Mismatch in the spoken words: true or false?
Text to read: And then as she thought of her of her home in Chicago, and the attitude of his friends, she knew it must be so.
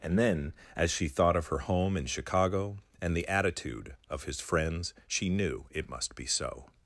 true